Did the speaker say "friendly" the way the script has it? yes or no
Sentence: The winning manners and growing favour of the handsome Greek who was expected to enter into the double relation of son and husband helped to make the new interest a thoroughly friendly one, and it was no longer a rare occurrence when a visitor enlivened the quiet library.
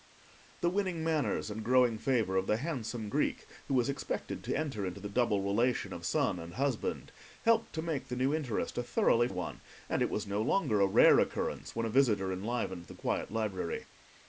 no